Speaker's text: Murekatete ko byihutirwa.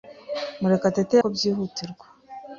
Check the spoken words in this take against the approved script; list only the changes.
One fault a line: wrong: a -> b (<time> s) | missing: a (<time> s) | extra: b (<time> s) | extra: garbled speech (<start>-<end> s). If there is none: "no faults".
no faults